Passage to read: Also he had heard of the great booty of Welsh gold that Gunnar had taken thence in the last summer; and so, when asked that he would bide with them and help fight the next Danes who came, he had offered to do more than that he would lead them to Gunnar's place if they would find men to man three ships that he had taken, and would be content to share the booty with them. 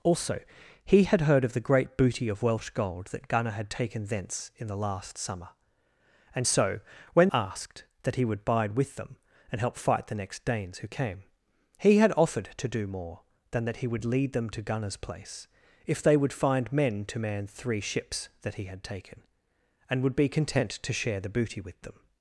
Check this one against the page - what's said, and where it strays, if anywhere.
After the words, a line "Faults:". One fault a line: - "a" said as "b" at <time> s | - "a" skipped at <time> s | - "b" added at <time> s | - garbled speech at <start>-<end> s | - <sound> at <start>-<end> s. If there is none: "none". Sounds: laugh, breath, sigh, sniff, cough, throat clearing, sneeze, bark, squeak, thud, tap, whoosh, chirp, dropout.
Also he had heard of the great booty of Welsh gold that Gunnar had taken thence in the last summer; and so, when asked that he would bide with them and help fight the next Danes who came, he had offered to do more than that he would lead them to Gunnar's place if they would find men to man three ships that he had taken, and would be content to share the booty with them.
Faults:
none